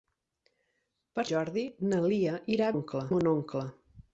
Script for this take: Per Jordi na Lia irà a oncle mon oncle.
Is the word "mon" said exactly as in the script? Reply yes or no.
yes